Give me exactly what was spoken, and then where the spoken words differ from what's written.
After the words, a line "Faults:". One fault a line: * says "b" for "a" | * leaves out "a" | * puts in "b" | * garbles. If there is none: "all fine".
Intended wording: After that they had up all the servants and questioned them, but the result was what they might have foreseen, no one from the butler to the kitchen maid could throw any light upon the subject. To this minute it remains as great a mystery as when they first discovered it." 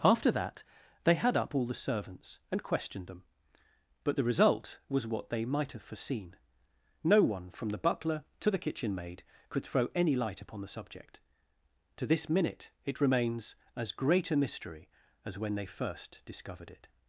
After that they had up all the servants and questioned them, but the result was what they might have foreseen, no one from the butler to the kitchen maid could throw any light upon the subject. To this minute it remains as great a mystery as when they first discovered it."
Faults:
all fine